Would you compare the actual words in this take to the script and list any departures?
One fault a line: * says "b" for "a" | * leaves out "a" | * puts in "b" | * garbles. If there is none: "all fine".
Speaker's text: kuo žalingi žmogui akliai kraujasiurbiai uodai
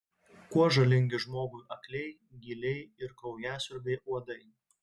* puts in "gyliai ir"